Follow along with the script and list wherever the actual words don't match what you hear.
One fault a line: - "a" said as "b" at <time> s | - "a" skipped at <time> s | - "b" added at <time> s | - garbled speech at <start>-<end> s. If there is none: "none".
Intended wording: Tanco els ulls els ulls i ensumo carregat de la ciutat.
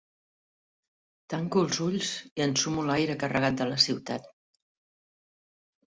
- "els ulls" skipped at 2.1 s
- "l'aire" added at 2.9 s